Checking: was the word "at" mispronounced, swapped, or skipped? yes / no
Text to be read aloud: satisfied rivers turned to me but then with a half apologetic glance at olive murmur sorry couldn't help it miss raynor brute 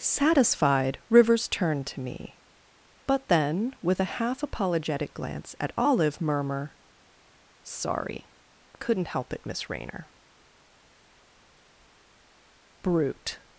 no